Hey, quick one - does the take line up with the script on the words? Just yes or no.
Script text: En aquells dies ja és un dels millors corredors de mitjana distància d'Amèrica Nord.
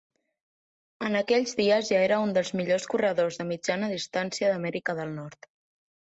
no